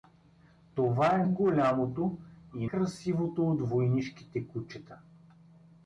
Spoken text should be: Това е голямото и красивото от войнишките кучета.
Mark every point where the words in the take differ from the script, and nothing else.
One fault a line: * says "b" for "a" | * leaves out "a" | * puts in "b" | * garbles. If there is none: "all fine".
all fine